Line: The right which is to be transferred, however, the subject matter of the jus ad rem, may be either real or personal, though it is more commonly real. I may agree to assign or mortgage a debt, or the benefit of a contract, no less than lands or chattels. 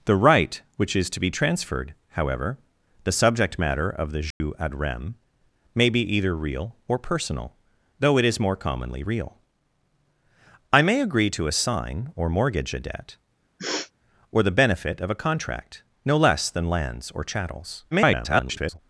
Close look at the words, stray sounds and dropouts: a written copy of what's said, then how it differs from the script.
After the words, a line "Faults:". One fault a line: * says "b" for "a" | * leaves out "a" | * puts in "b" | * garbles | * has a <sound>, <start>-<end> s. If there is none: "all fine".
The right which is to be transferred, however, the subject matter of the jus ad rem, may be either real or personal, though it is more commonly real. I may agree to assign or mortgage a debt, or the benefit of a contract, no less than lands or chattels. [garbled]
Faults:
* has a dropout, 4.3-4.4 s
* has a sniff, 13.6-13.9 s
* garbles